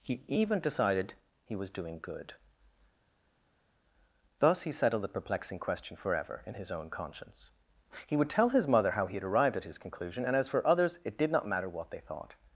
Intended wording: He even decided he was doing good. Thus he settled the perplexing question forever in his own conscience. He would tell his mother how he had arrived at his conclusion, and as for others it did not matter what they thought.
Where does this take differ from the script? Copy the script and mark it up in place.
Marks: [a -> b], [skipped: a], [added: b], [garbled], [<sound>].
He even decided he was doing good. Thus he settled the perplexing question forever in his own conscience. He would tell his mother how he had arrived at his conclusion, and as for others it did not matter what they thought.